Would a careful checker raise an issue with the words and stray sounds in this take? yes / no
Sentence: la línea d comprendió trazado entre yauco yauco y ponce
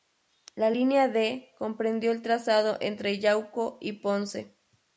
yes